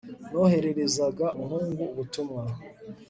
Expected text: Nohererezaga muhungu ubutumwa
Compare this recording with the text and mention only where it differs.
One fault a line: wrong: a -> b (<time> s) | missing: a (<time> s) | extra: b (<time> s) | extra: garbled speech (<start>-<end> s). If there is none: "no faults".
no faults